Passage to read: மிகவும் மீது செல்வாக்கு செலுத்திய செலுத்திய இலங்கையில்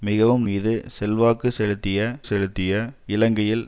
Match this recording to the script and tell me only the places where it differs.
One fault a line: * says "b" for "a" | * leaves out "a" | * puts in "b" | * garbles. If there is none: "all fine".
all fine